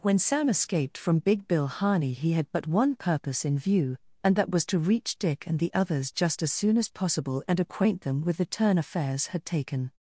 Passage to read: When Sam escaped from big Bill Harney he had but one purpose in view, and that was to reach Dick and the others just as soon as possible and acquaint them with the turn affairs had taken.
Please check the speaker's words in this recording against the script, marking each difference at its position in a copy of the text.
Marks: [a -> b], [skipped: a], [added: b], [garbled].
When Sam escaped from big Bill Harney he had but one purpose in view, and that was to reach Dick and the others just as soon as possible and acquaint them with the turn affairs had taken.